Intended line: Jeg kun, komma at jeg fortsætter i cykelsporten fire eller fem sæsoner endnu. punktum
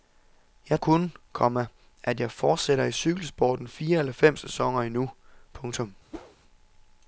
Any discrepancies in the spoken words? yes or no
no